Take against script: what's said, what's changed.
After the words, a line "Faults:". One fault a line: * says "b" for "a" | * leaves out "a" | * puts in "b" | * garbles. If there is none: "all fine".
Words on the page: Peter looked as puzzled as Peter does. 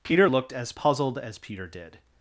Peter looked as puzzled as Peter did.
Faults:
* says "did" for "does"